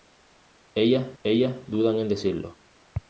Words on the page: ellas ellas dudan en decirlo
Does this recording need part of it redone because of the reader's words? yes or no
no